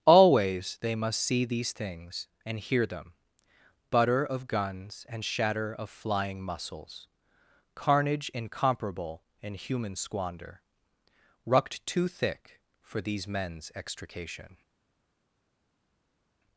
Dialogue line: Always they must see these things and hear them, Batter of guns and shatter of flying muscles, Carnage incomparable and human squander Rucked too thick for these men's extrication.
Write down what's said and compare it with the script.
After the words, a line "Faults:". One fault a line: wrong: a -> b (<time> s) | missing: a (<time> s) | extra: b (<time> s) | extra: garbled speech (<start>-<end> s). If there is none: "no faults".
Always they must see these things and hear them, Butter of guns and shatter of flying muscles, Carnage incomparable and human squander Rucked too thick for these men's extrication.
Faults:
wrong: Batter -> Butter (3.9 s)